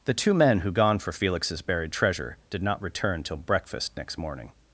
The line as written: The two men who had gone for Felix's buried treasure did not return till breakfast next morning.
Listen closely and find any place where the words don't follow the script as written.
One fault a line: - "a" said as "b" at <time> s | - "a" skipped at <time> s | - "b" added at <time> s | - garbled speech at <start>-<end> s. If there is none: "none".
- "had" skipped at 0.7 s